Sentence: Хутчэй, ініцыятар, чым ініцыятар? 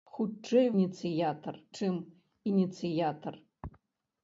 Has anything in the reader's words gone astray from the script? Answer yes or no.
no